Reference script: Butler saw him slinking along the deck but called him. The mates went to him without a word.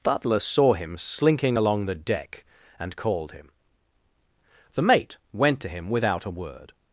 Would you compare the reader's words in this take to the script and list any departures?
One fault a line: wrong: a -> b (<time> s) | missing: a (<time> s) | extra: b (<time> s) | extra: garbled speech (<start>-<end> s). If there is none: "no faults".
wrong: but -> and (2.8 s)
wrong: mates -> mate (4.8 s)